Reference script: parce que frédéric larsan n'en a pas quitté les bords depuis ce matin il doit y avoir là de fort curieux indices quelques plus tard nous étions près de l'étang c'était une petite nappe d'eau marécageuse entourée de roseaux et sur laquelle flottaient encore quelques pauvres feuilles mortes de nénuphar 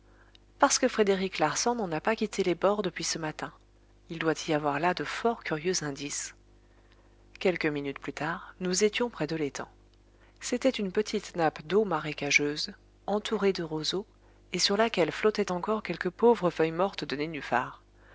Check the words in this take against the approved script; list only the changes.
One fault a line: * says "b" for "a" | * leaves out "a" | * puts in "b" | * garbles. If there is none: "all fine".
* puts in "minutes"